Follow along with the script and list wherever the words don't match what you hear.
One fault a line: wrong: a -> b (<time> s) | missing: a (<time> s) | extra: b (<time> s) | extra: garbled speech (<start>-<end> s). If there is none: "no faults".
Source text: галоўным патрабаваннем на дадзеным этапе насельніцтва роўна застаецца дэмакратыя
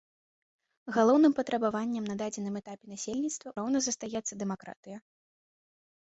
no faults